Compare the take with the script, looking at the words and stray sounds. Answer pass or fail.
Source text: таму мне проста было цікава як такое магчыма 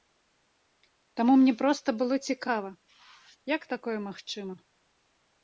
pass